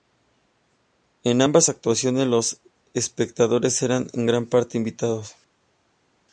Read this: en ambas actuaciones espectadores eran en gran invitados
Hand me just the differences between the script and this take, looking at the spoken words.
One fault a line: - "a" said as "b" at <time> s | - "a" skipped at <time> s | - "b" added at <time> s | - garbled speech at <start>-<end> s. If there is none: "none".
- "los" added at 2.3 s
- "parte" added at 4.4 s